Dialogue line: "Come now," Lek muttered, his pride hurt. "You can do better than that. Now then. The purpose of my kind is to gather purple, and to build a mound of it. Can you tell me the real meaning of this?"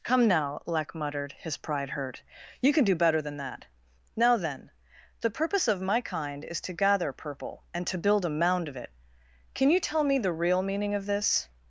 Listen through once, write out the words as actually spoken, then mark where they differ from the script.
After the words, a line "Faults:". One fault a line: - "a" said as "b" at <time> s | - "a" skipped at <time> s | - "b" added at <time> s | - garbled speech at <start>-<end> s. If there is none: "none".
"Come now," Lek muttered, his pride hurt. "You can do better than that. Now then. The purpose of my kind is to gather purple, and to build a mound of it. Can you tell me the real meaning of this?"
Faults:
none